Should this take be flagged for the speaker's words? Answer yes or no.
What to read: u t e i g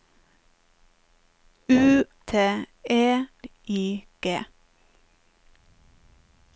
no